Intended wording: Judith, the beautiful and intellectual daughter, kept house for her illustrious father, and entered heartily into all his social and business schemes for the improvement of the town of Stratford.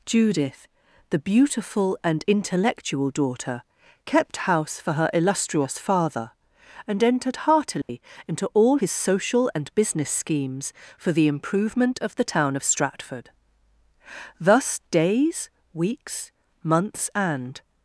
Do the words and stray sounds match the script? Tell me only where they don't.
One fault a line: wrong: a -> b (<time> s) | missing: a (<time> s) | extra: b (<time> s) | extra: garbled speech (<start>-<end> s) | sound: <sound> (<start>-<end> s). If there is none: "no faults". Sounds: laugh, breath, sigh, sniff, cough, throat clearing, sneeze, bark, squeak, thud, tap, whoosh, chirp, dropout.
sound: dropout (7.8-7.9 s)
extra: Thus days weeks months and (14.4 s)